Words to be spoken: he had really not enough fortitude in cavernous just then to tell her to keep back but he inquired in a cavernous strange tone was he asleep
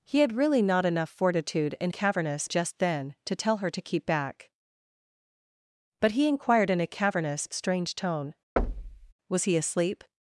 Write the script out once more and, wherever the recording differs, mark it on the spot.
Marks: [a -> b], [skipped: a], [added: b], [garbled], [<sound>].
he had really not enough fortitude in cavernous just then to tell her to keep back but he inquired in a cavernous strange tone [thud] was he asleep